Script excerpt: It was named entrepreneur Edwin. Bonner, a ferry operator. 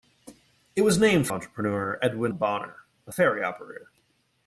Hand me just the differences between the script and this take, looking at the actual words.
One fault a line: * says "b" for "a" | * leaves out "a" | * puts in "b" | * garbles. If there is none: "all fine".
all fine